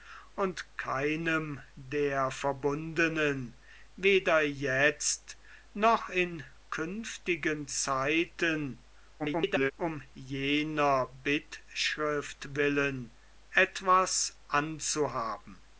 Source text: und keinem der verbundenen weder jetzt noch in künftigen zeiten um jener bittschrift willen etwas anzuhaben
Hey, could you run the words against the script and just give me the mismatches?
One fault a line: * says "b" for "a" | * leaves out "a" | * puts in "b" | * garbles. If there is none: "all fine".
* garbles